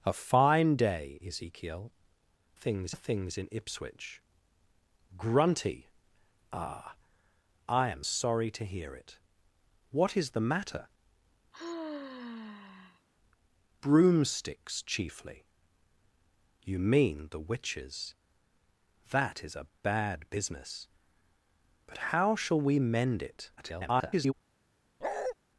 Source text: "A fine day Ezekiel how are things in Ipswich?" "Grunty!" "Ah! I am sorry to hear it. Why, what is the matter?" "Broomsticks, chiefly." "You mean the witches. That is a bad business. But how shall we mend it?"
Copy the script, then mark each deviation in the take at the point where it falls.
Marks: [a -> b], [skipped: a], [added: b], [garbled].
"A fine day Ezekiel [how -> things] are things in Ipswich?" "Grunty!" "Ah! I am sorry to hear it. [skipped: Why,] what is the matter?" "Broomsticks, chiefly." "You mean the witches. That is a bad business. But how shall we mend it?" [garbled]